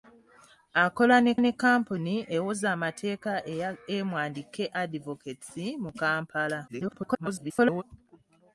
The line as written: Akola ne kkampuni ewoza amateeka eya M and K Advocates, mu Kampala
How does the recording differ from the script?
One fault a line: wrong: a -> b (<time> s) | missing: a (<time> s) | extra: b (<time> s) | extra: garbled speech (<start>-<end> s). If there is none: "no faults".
extra: ne (1.4 s)
extra: garbled speech (6.7-7.8 s)